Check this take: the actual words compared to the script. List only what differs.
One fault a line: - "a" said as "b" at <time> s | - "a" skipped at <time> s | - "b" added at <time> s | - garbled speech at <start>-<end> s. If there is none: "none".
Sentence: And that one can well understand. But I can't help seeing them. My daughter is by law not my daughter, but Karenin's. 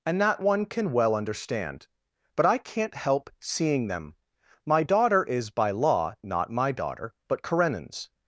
none